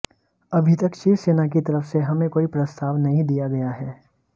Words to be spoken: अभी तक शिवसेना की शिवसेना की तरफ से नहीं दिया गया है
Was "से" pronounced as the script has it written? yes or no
no